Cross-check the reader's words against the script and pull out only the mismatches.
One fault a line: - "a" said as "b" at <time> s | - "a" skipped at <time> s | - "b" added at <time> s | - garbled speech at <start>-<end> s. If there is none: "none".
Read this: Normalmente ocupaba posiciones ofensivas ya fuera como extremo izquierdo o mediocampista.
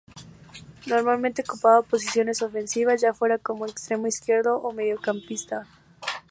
none